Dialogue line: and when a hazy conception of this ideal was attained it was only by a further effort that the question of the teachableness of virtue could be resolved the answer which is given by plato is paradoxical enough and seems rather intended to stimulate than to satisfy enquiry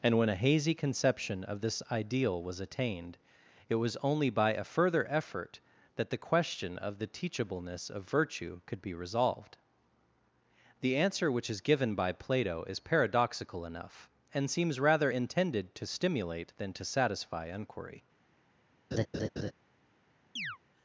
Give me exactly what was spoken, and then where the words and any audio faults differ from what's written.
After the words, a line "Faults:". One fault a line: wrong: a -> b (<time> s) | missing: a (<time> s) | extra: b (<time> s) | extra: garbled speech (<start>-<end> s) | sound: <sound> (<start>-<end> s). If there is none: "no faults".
and when a hazy conception of this ideal was attained it was only by a further effort that the question of the teachableness of virtue could be resolved the answer which is given by plato is paradoxical enough and seems rather intended to stimulate than to satisfy enquiry
Faults:
sound: laugh (18.9-19.5 s)
sound: chirp (20.4-20.6 s)